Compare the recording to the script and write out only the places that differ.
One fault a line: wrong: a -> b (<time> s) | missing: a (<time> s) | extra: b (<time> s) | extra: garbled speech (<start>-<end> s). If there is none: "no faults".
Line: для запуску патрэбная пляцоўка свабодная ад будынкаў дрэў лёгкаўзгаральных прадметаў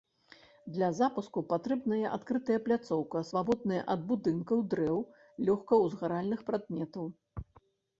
extra: адкрытая (2.2 s)